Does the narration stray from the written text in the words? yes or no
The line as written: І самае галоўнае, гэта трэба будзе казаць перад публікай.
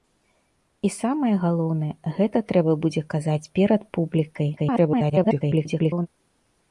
yes